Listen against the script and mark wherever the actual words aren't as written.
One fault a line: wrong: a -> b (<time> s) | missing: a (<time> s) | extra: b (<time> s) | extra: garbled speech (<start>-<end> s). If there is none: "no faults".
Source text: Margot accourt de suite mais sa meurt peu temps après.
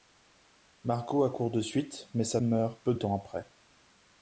no faults